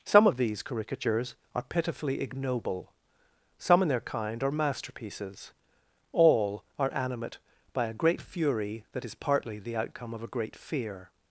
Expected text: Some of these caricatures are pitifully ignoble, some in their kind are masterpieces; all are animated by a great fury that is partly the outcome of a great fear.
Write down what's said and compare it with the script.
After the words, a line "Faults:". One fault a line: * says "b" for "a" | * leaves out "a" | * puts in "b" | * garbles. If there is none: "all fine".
Some of these caricatures are pitifully ignoble, some in their kind are masterpieces; all are animate by a great fury that is partly the outcome of a great fear.
Faults:
* says "animate" for "animated"